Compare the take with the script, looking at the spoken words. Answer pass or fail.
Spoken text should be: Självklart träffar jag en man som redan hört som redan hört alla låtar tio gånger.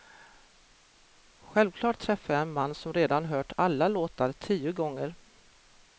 fail